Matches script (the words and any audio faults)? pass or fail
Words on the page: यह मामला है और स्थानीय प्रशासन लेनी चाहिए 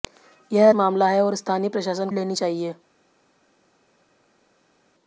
pass